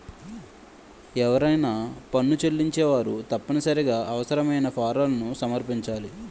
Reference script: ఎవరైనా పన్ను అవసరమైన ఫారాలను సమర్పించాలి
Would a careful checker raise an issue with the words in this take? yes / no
yes